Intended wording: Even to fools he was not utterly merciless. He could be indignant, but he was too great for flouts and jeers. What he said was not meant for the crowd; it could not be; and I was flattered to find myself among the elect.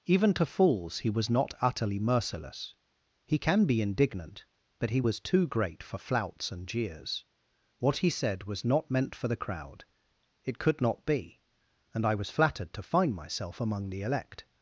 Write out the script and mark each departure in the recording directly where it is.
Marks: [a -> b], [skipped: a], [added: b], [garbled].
Even to fools he was not utterly merciless. He [could -> can] be indignant, but he was too great for flouts and jeers. What he said was not meant for the crowd; it could not be; and I was flattered to find myself among the elect.